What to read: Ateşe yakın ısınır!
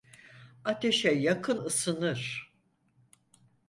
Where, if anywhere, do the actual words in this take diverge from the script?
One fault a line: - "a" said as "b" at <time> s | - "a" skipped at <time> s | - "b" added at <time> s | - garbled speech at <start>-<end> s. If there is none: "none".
none